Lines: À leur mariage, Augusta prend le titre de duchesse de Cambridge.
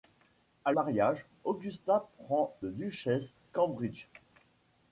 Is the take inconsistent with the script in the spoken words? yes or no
yes